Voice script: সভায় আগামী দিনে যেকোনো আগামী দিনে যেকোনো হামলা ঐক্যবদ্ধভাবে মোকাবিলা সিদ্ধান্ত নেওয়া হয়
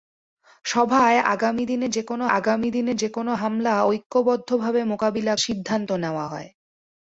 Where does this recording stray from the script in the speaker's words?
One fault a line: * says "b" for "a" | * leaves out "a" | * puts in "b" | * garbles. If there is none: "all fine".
all fine